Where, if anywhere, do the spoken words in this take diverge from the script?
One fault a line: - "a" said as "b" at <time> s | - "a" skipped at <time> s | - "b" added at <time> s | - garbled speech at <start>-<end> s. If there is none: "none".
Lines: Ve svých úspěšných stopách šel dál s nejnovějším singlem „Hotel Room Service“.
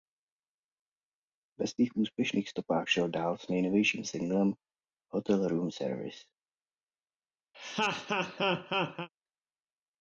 none